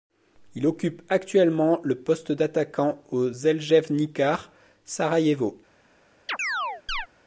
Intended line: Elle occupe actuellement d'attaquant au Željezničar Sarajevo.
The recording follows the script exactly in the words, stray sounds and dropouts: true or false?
false